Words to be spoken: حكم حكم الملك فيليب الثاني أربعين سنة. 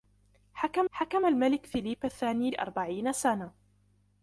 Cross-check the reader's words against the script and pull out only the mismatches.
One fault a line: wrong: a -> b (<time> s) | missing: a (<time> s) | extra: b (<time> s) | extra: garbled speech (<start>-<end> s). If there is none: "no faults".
no faults